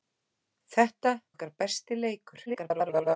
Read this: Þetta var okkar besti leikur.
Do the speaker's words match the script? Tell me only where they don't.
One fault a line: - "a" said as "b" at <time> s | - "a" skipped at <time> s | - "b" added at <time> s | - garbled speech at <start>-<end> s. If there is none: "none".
- "var" skipped at 1.1 s
- garbled speech at 2.5-3.2 s